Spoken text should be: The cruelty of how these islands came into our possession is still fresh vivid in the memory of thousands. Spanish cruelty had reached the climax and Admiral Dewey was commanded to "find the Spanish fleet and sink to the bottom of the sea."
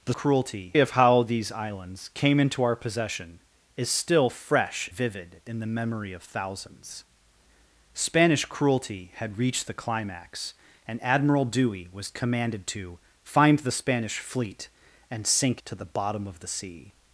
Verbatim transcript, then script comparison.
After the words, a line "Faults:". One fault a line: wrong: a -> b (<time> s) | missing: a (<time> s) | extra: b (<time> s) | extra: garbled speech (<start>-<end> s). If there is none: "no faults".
The cruelty of how these islands came into our possession is still fresh vivid in the memory of thousands. Spanish cruelty had reached the climax and Admiral Dewey was commanded to "find the Spanish fleet and sink to the bottom of the sea."
Faults:
no faults